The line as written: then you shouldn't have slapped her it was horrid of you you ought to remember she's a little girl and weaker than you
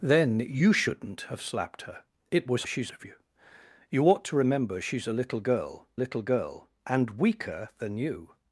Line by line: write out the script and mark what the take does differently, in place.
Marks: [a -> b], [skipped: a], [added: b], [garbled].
then you shouldn't have slapped her it was [horrid -> she's] of you you ought to remember she's a little girl [added: little girl] and weaker than you